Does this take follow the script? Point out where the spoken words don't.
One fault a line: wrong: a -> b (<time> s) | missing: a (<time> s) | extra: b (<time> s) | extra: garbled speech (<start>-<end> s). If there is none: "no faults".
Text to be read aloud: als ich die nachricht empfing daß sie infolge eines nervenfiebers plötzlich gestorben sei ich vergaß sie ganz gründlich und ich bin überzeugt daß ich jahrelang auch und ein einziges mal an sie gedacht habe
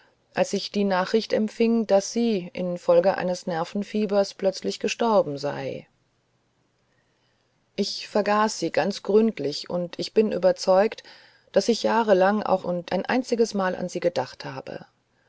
no faults